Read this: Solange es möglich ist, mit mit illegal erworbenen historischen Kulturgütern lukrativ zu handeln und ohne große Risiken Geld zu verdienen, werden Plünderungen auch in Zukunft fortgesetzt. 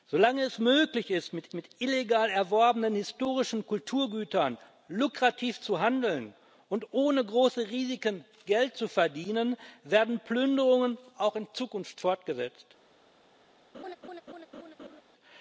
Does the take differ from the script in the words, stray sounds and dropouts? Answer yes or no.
yes